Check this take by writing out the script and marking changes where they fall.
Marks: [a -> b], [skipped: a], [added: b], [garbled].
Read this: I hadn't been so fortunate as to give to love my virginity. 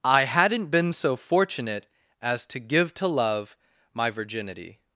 I hadn't been so fortunate as to give to love my virginity.